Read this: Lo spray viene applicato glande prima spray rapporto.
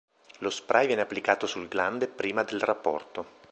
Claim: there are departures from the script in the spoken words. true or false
true